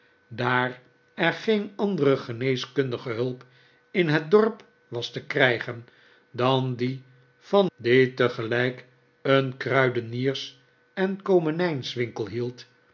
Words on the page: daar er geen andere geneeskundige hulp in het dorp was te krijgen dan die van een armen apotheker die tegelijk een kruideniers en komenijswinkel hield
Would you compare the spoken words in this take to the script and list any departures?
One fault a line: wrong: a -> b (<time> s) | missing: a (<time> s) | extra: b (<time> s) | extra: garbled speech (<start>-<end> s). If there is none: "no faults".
missing: een armen apotheker (7.7 s)